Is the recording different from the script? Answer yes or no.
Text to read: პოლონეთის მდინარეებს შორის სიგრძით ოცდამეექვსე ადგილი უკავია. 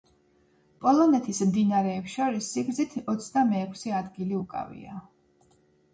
no